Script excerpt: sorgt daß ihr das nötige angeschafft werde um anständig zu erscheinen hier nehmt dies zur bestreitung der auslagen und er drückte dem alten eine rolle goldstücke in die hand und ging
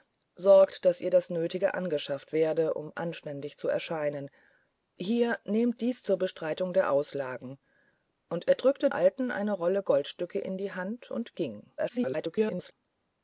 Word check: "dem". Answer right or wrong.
wrong